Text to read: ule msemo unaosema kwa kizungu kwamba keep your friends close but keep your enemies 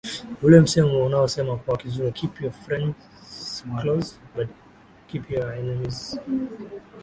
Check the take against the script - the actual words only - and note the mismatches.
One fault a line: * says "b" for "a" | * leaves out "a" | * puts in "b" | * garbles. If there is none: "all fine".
* leaves out "kwamba"